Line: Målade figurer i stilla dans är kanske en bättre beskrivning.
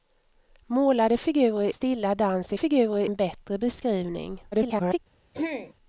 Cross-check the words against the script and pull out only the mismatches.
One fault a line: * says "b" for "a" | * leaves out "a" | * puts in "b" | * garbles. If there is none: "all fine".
* leaves out "i"
* says "figurer" for "kanske"
* garbles